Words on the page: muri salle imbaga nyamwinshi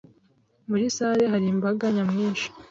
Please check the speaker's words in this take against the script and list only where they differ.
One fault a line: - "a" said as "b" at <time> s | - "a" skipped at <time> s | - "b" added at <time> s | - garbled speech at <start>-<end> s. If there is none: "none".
- "hari" added at 1.3 s